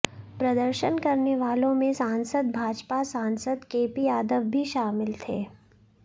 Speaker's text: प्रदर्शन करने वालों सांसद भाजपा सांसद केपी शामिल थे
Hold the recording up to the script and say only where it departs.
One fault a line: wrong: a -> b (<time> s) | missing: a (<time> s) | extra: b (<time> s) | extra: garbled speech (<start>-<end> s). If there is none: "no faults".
extra: में (1.7 s)
extra: यादव भी (4.0 s)